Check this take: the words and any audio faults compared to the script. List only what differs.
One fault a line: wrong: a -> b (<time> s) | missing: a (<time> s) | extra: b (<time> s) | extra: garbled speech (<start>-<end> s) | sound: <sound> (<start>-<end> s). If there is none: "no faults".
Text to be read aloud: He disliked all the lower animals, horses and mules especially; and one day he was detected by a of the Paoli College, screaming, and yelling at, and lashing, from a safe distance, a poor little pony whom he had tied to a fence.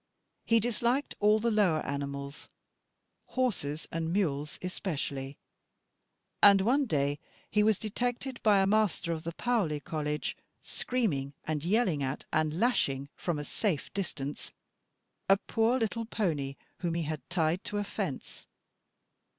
extra: master (8.6 s)